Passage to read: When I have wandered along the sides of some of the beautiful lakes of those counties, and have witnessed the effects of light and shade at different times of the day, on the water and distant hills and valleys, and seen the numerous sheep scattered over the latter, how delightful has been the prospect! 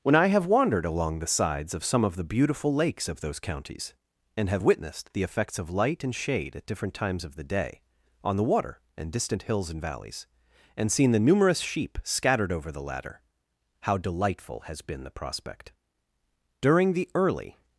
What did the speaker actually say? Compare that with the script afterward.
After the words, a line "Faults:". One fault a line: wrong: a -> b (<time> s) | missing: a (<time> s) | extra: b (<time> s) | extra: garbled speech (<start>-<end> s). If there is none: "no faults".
When I have wandered along the sides of some of the beautiful lakes of those counties, and have witnessed the effects of light and shade at different times of the day, on the water and distant hills and valleys, and seen the numerous sheep scattered over the latter, how delightful has been the prospect! During the early
Faults:
extra: During the early (16.6 s)